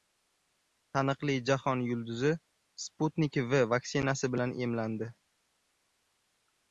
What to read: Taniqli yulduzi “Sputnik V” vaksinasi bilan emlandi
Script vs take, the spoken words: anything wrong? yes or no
yes